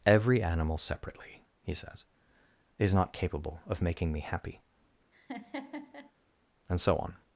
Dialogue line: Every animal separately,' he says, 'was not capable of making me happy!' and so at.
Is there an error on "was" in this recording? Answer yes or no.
yes